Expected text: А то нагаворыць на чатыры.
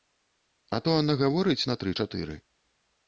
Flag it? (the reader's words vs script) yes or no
yes